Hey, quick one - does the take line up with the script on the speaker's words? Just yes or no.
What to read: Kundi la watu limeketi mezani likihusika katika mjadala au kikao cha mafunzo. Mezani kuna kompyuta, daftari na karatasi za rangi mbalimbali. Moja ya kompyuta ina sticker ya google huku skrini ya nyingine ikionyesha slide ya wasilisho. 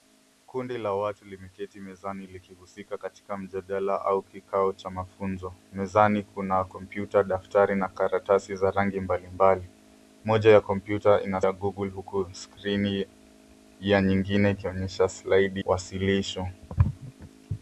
no